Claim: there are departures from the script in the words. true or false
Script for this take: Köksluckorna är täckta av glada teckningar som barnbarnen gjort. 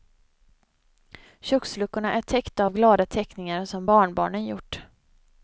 false